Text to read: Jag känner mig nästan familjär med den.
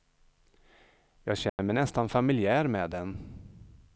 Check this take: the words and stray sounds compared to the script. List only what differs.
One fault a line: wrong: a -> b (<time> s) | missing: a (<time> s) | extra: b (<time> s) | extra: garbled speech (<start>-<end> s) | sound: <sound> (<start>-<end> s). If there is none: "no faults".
sound: dropout (1.5-1.6 s)